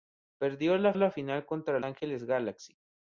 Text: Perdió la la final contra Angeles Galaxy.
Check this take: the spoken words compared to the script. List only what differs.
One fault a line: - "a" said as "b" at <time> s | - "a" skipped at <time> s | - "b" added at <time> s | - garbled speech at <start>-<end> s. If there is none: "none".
none